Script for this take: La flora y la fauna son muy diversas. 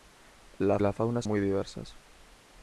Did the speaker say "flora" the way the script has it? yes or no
no